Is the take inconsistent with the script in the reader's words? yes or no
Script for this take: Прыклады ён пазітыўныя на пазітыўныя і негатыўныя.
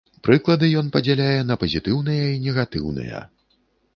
yes